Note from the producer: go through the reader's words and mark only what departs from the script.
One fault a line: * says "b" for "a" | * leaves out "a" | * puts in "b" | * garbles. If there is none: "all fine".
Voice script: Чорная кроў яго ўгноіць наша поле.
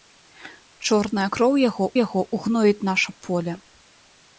* puts in "яго"